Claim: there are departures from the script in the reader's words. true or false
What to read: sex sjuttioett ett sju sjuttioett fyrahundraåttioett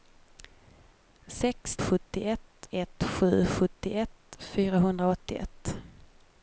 false